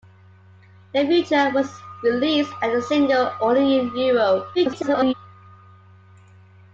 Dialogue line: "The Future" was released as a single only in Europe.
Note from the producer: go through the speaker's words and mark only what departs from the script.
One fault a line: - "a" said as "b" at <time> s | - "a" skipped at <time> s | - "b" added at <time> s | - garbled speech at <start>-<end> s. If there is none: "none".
- garbled speech at 4.5-5.1 s